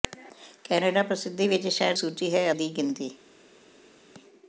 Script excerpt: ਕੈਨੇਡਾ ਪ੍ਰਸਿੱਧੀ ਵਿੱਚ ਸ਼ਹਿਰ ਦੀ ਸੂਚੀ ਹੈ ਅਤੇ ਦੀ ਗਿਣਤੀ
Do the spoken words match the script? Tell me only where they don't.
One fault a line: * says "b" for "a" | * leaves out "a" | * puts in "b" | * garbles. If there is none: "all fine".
* leaves out "ਦੀ"
* leaves out "ਅਤੇ"